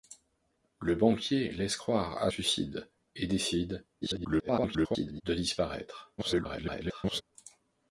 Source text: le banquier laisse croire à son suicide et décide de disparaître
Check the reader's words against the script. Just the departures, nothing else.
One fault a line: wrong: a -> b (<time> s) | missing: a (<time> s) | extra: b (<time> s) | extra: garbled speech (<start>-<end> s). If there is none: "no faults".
missing: son (2.3 s)
extra: garbled speech (4.0-5.2 s)
extra: garbled speech (6.2-7.2 s)